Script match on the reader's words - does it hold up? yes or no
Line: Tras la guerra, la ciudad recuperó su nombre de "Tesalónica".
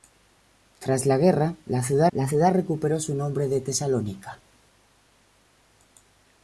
no